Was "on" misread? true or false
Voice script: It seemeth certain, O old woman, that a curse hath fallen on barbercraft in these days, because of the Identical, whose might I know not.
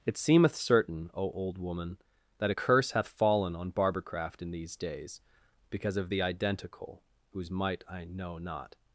false